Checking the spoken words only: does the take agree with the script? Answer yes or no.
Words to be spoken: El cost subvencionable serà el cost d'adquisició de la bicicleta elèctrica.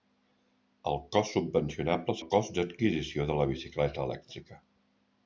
no